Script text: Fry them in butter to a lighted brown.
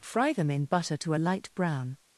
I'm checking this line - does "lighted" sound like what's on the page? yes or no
no